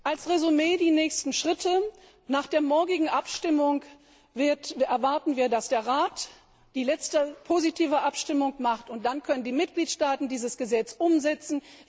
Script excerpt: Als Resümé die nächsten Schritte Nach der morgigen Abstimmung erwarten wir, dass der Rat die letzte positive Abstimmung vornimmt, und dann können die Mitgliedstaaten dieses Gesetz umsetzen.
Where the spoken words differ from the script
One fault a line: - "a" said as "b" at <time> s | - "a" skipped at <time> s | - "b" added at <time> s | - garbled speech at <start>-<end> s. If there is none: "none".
none